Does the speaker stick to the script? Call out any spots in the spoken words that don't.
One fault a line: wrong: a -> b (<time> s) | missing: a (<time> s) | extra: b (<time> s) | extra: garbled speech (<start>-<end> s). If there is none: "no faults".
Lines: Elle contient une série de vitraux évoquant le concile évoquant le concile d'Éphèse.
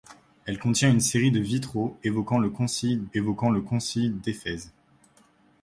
no faults